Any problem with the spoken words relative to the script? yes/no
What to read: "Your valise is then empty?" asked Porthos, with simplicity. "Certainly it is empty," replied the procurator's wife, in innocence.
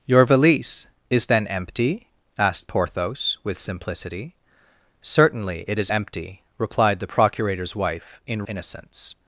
no